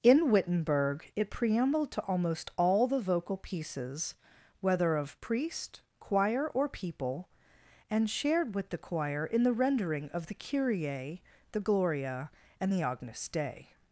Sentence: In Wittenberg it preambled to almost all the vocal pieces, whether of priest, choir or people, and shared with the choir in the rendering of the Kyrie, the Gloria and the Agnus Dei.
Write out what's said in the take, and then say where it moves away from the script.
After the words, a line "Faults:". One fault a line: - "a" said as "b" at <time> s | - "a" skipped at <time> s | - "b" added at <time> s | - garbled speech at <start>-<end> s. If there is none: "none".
In Wittenberg it preambled to almost all the vocal pieces, whether of priest, choir or people, and shared with the choir in the rendering of the Kyrie, the Gloria and the Agnus Dei.
Faults:
none